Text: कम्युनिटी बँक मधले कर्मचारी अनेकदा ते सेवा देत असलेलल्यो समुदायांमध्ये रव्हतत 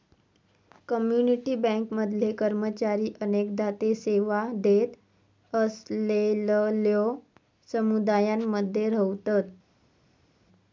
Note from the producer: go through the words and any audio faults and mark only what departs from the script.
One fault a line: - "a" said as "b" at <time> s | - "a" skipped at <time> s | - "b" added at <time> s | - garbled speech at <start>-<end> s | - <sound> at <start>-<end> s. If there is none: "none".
none